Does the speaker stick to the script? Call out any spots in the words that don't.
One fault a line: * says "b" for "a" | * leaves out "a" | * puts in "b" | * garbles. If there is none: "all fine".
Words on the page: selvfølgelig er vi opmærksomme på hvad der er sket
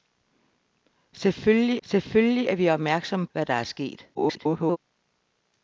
* puts in "selvfølgelig"
* leaves out "på"
* garbles